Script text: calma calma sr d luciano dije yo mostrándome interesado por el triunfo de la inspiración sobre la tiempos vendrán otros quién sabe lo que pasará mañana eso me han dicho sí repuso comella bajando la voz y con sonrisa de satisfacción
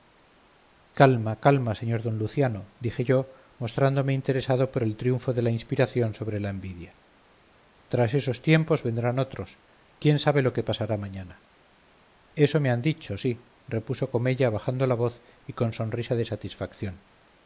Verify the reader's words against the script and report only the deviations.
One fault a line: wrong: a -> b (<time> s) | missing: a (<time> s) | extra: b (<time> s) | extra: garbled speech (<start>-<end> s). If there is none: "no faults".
extra: envidia tras esos (6.5 s)